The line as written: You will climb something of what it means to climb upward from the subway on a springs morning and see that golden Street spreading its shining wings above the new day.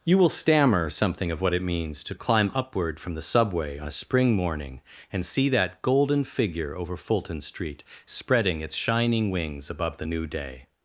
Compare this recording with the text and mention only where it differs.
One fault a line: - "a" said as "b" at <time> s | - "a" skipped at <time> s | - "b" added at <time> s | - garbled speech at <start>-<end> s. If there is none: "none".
- "climb" said as "stammer" at 0.3 s
- "springs" said as "spring" at 4.0 s
- "figure over Fulton" added at 6.2 s